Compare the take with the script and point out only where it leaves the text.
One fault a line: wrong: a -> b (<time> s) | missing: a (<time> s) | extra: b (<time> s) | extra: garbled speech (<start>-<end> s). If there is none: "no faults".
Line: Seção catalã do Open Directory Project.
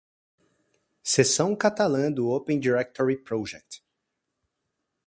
no faults